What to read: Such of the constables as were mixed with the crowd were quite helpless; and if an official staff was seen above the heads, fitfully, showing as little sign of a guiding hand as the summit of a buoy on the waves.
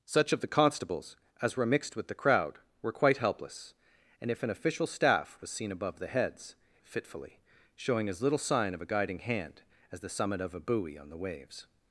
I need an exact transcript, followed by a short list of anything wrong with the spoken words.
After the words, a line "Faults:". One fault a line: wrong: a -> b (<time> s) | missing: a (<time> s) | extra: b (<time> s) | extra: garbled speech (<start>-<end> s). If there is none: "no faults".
Such of the constables as were mixed with the crowd were quite helpless; and if an official staff was seen above the heads, fitfully, showing as little sign of a guiding hand as the summit of a buoy on the waves.
Faults:
no faults